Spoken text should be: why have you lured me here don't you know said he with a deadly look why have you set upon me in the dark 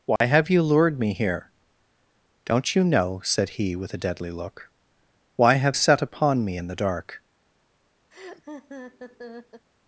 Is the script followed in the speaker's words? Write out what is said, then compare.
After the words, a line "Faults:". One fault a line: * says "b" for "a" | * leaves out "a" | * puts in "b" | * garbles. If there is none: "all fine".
why have you lured me here don't you know said he with a deadly look why have set upon me in the dark
Faults:
* leaves out "you"